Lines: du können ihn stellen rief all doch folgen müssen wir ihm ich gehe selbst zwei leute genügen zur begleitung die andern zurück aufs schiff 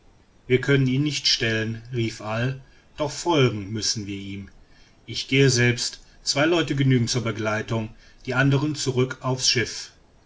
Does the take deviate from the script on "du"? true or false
true